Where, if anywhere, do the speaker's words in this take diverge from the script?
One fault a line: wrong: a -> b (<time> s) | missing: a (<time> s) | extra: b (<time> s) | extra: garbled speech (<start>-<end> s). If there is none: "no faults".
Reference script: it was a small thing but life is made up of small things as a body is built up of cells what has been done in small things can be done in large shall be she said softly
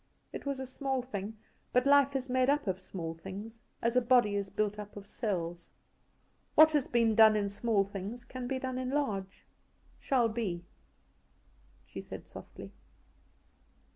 no faults